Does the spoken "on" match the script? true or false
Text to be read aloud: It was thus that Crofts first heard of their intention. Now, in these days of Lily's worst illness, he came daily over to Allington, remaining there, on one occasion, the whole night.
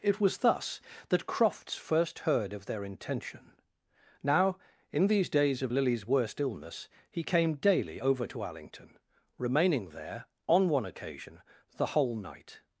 true